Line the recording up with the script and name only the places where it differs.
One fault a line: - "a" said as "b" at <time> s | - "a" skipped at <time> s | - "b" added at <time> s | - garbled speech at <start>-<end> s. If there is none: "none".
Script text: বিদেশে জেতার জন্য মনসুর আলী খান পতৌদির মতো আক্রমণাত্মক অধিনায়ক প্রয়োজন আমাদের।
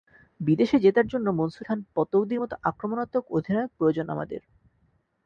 - "আলী" skipped at 1.6 s